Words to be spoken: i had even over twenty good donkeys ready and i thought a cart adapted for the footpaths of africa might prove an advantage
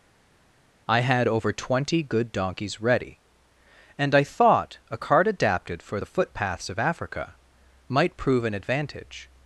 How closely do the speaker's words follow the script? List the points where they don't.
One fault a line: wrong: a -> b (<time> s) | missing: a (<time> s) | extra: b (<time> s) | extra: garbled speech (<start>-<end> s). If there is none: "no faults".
missing: even (1.3 s)